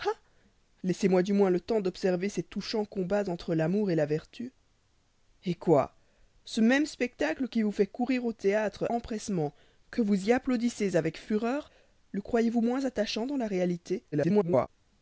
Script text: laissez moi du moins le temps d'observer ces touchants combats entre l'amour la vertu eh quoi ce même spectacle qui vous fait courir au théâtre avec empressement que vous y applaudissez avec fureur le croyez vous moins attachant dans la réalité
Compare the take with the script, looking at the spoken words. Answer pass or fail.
fail